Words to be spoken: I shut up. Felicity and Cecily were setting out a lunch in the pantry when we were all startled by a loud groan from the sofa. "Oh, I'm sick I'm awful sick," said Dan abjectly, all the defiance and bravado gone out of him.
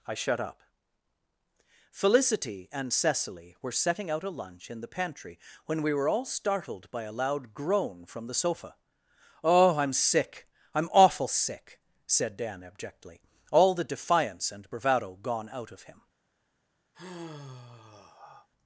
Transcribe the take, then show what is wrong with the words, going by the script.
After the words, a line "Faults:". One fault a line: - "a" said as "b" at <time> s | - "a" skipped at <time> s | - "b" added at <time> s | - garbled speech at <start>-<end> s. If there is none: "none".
I shut up. Felicity and Cecily were setting out a lunch in the pantry when we were all startled by a loud groan from the sofa. "Oh, I'm sick I'm awful sick," said Dan abjectly, all the defiance and bravado gone out of him.
Faults:
none